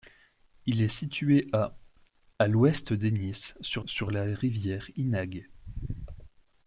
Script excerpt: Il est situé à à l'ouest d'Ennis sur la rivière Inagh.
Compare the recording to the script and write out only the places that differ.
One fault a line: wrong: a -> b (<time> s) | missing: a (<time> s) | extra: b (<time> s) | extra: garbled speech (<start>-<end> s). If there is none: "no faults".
extra: sur (3.8 s)